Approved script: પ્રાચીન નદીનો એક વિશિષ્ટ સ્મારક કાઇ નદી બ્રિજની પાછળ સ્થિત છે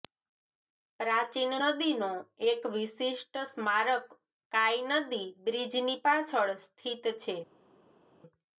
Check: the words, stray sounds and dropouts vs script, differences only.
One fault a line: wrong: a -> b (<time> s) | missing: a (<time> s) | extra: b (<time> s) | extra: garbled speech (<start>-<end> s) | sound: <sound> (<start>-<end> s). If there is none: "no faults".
no faults